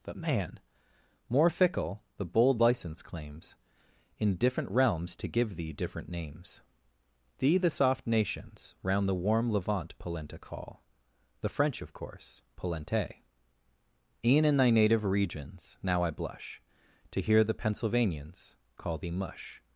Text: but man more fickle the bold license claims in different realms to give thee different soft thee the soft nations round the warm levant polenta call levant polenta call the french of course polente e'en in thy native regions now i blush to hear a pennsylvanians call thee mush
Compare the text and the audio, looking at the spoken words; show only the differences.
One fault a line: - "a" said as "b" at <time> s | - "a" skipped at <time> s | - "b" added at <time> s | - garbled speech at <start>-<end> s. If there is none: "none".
- "soft" said as "names" at 6.1 s
- "levant polenta call" skipped at 10.8 s
- "a" said as "the" at 17.4 s